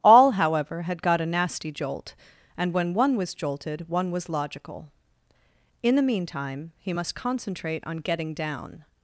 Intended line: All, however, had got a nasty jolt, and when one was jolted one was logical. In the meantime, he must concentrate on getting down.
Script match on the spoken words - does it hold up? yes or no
yes